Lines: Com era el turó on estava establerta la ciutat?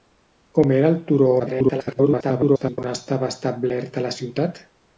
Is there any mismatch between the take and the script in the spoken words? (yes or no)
yes